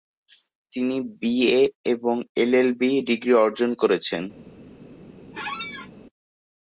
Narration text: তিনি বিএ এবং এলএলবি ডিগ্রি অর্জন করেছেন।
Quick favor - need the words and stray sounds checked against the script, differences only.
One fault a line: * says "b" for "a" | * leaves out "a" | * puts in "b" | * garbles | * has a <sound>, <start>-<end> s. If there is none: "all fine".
* has a squeak, 5.3-5.9 s